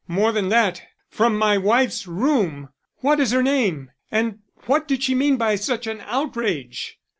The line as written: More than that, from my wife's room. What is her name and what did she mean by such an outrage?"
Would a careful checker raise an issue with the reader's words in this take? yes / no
no